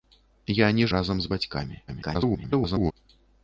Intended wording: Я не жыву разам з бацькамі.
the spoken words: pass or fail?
fail